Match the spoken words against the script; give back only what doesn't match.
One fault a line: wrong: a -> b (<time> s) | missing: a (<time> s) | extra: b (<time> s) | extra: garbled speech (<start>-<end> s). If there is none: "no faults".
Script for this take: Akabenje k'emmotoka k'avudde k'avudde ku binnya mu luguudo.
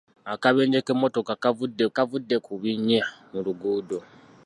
no faults